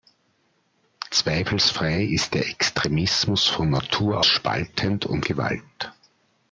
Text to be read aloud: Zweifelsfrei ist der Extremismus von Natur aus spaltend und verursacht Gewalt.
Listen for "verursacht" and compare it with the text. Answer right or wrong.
wrong